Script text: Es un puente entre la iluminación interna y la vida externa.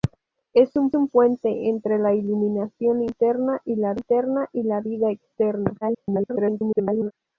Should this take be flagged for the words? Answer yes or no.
yes